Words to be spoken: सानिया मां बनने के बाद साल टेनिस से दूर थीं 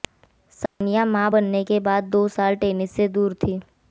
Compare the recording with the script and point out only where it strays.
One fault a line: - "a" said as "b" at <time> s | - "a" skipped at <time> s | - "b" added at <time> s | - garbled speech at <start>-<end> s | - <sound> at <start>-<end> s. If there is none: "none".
- dropout at 0.7-0.8 s
- "दो" added at 2.1 s